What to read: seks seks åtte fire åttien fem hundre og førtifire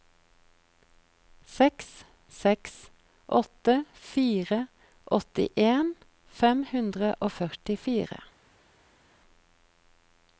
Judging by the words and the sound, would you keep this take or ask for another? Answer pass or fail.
pass